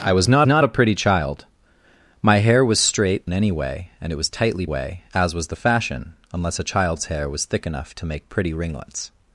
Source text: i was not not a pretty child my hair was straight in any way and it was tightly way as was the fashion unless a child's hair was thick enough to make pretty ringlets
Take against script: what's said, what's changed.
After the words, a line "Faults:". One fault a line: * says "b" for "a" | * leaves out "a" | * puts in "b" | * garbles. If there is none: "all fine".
i was not not a pretty child my hair was straight in any way and it was tightly way as was the fashion unless a child's hair was thick enough to make pretty ringlets
Faults:
all fine